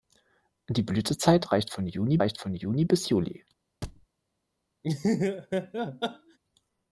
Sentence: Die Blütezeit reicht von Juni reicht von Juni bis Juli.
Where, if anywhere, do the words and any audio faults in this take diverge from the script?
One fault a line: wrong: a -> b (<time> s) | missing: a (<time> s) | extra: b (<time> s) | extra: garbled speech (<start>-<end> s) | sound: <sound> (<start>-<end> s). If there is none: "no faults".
sound: thud (3.8-4.1 s)
sound: laugh (4.8-6.4 s)